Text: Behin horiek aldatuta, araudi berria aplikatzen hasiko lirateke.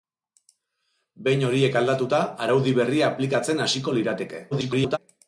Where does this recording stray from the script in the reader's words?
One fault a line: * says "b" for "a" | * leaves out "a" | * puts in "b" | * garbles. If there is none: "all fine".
* garbles